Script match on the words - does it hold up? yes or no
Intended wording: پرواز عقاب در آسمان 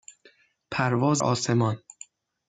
no